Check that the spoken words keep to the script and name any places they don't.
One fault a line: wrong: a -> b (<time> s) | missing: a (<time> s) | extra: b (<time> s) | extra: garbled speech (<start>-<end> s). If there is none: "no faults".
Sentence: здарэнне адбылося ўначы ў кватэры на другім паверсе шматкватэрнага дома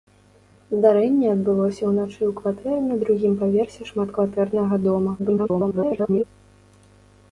extra: garbled speech (5.2-6.2 s)